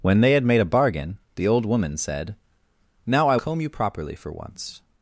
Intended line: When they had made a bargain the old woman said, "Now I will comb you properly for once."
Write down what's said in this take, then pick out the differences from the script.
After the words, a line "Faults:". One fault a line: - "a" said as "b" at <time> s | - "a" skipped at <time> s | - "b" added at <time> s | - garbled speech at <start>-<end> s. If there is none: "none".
When they had made a bargain the old woman said, "Now I comb you properly for once."
Faults:
- "will" skipped at 3.4 s